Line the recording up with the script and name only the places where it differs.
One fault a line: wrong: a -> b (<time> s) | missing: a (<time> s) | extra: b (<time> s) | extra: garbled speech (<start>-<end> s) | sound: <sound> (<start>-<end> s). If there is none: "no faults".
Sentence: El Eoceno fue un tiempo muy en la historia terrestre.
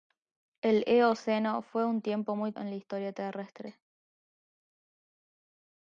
no faults